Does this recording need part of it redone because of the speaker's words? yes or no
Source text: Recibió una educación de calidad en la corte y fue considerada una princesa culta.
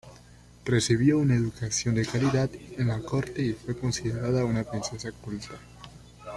no